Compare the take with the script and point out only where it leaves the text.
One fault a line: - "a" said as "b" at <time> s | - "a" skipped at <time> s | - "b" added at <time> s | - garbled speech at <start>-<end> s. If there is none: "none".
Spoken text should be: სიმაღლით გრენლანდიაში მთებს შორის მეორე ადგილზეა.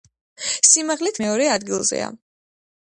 - "გრენლანდიაში მთებს შორის" skipped at 1.2 s